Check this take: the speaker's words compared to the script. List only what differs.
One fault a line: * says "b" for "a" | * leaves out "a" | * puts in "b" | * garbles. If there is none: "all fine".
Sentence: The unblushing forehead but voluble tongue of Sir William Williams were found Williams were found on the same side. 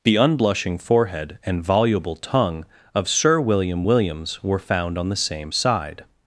* says "and" for "but"
* leaves out "Williams were found"